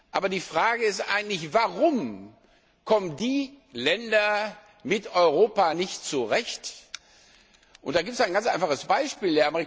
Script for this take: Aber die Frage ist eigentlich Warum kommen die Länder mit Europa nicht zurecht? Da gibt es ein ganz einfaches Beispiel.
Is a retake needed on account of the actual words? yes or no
no